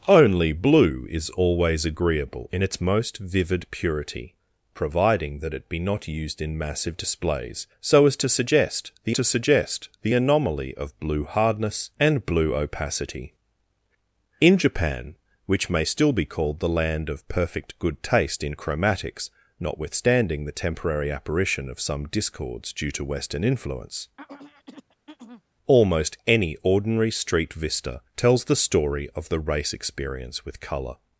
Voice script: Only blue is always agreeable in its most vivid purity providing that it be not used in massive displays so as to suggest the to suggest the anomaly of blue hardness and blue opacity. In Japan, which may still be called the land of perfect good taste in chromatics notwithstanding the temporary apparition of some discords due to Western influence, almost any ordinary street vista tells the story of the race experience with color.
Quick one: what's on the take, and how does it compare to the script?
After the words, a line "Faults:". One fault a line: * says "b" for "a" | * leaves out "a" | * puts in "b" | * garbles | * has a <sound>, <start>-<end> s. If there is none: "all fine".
Only blue is always agreeable in its most vivid purity providing that it be not used in massive displays so as to suggest the to suggest the anomaly of blue hardness and blue opacity. In Japan, which may still be called the land of perfect good taste in chromatics notwithstanding the temporary apparition of some discords due to Western influence, almost any ordinary street vista tells the story of the race experience with color.
Faults:
* has a throat clearing, 24.2-25.4 s